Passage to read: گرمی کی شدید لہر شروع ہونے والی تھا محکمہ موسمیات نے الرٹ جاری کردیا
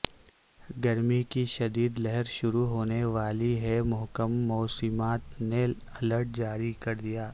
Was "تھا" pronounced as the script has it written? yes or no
no